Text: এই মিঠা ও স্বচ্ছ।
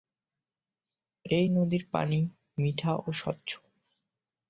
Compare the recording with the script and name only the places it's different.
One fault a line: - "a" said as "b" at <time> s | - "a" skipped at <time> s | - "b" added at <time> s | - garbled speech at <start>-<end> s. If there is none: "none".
- "নদীর পানি" added at 1.5 s